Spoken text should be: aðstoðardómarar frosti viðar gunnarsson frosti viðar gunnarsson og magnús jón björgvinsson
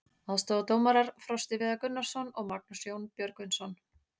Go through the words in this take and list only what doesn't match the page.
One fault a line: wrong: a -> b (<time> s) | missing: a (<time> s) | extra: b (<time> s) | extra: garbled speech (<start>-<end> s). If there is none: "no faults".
missing: frosti viðar gunnarsson (2.3 s)